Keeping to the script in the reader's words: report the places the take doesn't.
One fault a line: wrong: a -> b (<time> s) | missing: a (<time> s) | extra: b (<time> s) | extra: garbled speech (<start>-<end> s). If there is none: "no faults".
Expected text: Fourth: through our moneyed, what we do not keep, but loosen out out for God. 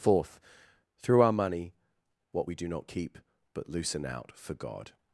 wrong: moneyed -> money (1.3 s)
missing: out (4.3 s)